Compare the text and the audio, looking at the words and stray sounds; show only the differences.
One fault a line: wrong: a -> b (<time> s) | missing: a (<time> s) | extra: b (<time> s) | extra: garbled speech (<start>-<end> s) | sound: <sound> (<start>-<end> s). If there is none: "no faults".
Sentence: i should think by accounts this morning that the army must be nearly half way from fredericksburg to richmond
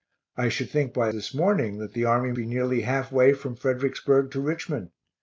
missing: accounts (1.1 s)
missing: must (2.3 s)